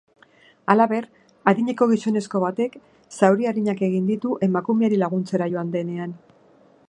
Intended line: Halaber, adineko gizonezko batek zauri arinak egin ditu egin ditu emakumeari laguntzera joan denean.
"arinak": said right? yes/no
yes